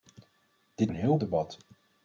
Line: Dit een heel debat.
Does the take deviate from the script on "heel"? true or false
false